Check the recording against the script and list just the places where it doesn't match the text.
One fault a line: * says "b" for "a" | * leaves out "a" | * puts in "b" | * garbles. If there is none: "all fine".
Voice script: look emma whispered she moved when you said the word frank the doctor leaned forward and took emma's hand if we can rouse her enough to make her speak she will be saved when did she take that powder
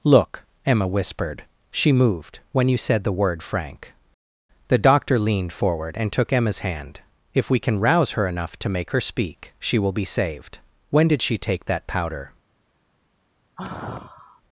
all fine